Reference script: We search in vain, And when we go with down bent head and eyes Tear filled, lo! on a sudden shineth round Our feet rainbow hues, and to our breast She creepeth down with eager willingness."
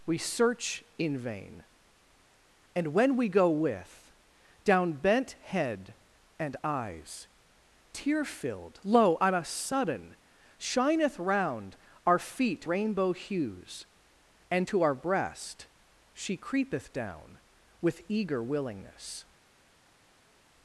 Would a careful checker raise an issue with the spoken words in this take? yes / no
no